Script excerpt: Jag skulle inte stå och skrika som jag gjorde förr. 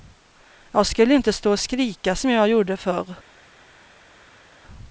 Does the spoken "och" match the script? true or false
true